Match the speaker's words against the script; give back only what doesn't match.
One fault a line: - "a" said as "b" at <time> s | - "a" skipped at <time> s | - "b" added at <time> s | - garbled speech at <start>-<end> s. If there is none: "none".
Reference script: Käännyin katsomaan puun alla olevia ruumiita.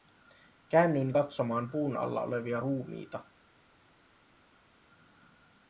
none